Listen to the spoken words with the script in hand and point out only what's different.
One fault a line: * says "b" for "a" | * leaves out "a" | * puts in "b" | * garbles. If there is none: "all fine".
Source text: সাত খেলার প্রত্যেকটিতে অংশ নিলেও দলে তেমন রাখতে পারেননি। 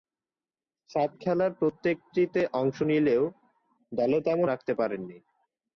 all fine